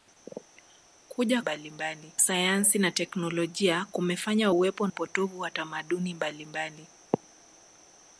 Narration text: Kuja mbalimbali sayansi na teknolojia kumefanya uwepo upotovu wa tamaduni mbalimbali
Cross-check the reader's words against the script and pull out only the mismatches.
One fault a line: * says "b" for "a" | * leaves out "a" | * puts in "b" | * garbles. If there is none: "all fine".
all fine